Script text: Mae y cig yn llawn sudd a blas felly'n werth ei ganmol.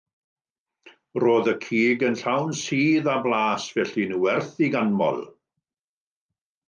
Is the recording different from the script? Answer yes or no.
yes